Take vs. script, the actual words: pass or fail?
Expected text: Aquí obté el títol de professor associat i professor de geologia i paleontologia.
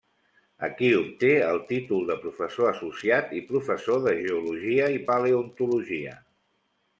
pass